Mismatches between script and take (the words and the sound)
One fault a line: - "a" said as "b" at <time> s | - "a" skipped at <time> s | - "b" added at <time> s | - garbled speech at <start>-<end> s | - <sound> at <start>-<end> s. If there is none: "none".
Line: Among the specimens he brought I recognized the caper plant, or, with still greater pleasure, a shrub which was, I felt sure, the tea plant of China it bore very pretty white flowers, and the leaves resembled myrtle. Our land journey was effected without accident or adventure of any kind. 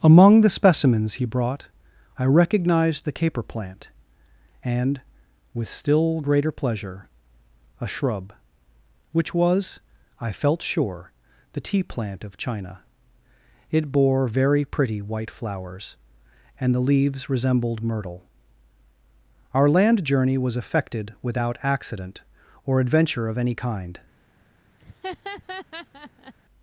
- "or" said as "and" at 4.6 s
- laugh at 24.8-26.3 s